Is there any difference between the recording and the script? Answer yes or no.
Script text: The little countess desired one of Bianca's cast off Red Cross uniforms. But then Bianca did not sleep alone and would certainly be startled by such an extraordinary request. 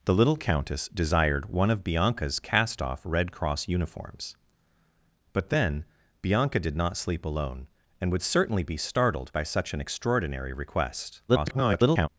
yes